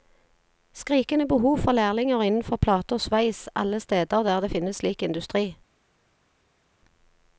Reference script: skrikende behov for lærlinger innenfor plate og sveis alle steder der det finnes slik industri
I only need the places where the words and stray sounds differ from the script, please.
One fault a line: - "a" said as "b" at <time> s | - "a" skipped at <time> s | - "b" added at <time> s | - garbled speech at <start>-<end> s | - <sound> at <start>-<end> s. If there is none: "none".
none